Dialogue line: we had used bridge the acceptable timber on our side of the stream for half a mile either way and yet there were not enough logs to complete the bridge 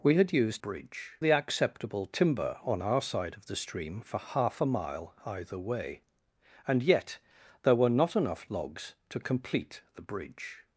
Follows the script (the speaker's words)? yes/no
yes